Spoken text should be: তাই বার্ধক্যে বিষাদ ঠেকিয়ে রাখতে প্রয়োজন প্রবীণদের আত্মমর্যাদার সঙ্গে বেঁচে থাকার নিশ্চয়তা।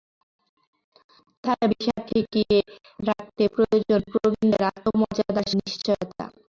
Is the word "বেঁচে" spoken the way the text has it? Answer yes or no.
no